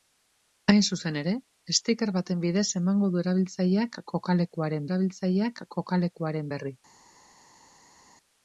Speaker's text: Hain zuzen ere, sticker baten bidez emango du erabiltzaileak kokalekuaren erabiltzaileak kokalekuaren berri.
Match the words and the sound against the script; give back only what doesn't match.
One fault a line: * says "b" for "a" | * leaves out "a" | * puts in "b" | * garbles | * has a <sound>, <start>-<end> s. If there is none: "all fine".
all fine